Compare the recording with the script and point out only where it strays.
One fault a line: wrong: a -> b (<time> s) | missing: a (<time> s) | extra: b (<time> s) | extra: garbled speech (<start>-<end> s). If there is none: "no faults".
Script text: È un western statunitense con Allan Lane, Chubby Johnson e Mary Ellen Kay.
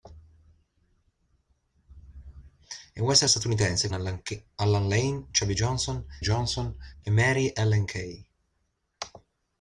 missing: con (3.9 s)
extra: Johnson (6.2 s)